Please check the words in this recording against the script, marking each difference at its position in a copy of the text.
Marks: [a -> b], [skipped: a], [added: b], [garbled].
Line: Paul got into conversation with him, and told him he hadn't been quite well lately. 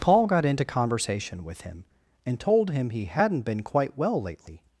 Paul got into conversation with him, and told him he hadn't been quite well lately.